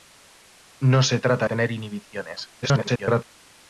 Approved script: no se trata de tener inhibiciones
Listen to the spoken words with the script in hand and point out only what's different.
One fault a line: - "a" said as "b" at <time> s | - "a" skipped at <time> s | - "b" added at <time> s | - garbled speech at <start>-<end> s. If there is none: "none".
- "de" skipped at 1.4 s
- garbled speech at 2.6-3.2 s